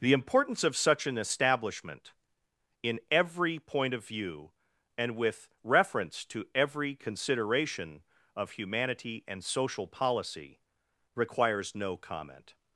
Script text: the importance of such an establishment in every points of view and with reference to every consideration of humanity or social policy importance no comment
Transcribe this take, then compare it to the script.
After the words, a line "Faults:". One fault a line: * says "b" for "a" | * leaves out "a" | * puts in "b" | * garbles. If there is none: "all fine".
the importance of such an establishment in every point of view and with reference to every consideration of humanity and social policy requires no comment
Faults:
* says "point" for "points"
* says "and" for "or"
* says "requires" for "importance"